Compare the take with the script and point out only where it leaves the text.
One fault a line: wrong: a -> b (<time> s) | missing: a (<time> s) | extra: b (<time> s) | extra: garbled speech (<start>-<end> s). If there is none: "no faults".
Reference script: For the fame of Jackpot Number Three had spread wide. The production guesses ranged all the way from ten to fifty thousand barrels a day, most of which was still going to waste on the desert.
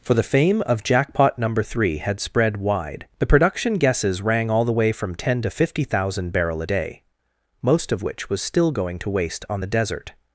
wrong: ranged -> rang (4.2 s)
wrong: barrels -> barrel (6.3 s)